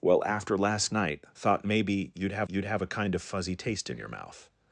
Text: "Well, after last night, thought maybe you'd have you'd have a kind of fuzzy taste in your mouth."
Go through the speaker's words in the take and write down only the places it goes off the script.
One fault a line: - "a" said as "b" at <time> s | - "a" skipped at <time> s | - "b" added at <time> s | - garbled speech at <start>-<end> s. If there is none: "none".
none